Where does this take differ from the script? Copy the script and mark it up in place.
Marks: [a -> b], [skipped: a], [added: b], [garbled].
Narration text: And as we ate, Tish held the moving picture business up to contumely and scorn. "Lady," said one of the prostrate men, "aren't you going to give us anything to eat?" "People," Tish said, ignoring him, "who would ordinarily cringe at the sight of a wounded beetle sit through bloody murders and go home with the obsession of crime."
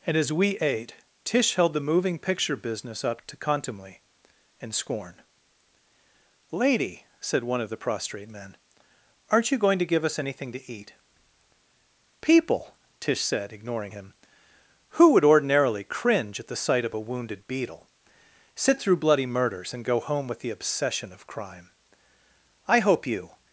And as we ate, Tish held the moving picture business up to contumely and scorn. "Lady," said one of the prostrate men, "aren't you going to give us anything to eat?" "People," Tish said, ignoring him, "who would ordinarily cringe at the sight of a wounded beetle sit through bloody murders and go home with the obsession of crime." [added: I hope you]